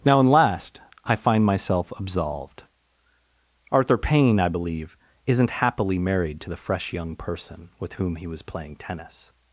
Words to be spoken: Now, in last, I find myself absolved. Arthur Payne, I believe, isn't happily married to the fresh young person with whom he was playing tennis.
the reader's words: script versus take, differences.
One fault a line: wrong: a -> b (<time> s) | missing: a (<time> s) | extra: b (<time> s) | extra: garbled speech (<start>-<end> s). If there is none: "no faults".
no faults